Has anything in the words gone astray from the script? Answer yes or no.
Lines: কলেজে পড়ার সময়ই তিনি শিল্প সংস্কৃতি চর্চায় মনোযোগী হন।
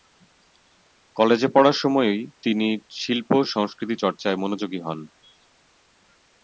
no